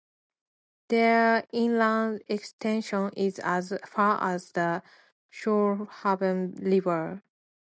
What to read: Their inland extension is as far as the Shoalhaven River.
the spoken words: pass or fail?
pass